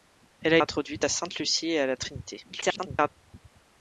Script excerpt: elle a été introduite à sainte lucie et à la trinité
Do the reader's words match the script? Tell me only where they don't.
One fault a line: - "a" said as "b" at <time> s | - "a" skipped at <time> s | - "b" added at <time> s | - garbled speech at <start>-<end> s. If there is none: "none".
- "été" skipped at 0.6 s
- garbled speech at 2.5-3.1 s